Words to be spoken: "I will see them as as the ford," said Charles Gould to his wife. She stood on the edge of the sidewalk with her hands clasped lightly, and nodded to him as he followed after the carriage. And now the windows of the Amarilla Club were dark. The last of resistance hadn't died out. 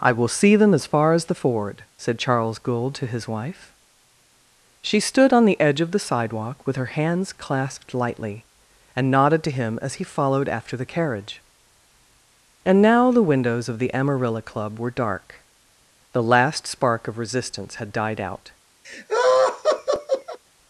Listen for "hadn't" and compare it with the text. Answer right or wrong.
wrong